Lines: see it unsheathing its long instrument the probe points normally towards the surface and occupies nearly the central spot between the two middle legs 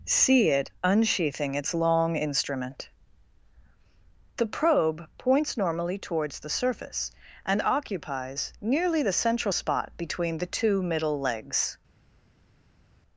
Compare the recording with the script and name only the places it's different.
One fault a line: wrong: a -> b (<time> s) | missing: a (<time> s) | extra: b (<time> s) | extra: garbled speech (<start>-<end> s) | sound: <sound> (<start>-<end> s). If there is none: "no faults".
no faults